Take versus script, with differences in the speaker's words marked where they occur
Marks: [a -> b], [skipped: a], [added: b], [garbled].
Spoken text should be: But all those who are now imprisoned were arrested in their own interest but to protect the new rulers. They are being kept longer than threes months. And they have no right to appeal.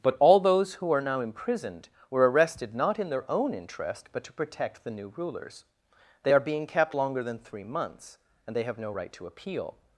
But all those who are now imprisoned were arrested [added: not] in their own interest but to protect the new rulers. They are being kept longer than [threes -> three] months. And they have no right to appeal.